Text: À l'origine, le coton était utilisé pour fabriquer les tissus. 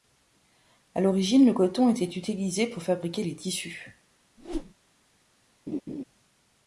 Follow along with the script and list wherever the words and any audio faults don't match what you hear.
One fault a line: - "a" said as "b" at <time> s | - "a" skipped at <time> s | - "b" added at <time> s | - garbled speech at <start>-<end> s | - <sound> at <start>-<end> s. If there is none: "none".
- whoosh at 4.4-4.7 s
- laugh at 5.7-6.0 s